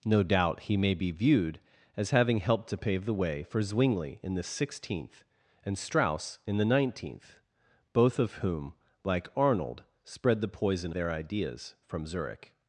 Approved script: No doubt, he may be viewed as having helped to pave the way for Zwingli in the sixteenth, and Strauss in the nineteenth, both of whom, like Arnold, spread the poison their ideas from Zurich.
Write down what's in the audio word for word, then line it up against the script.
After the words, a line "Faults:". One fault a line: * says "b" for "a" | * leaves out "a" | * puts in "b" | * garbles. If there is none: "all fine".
No doubt, he may be viewed as having helped to pave the way for Zwingli in the sixteenth, and Strauss in the nineteenth, both of whom, like Arnold, spread the poison their ideas from Zurich.
Faults:
all fine